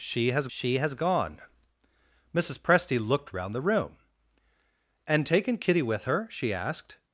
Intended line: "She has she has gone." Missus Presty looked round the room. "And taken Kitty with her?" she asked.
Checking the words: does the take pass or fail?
pass